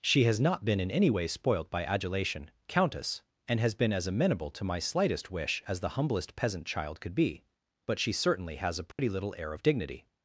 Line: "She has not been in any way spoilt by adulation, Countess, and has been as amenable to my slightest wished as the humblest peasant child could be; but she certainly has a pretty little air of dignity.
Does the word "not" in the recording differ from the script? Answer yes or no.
no